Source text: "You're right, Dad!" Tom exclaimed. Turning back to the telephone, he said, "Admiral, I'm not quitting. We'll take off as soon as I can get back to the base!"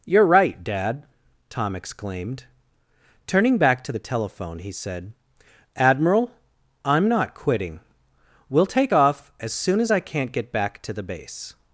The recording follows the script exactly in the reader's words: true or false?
false